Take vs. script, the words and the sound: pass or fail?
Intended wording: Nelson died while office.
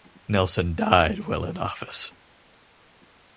fail